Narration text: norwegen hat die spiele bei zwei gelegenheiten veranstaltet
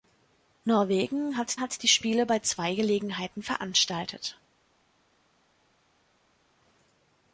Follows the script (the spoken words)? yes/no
no